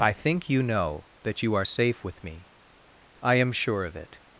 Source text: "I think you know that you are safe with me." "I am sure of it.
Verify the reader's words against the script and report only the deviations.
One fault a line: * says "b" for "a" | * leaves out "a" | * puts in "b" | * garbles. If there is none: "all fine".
all fine